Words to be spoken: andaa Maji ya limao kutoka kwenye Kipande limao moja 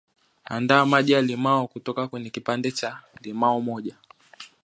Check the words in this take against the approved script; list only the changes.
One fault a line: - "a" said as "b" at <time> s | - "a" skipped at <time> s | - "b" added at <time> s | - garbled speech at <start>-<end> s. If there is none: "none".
- "cha" added at 2.7 s